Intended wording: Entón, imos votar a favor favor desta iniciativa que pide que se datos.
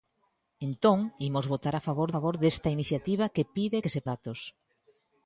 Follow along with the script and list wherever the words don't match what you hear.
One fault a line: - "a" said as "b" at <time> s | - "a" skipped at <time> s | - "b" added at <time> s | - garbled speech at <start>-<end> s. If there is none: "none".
none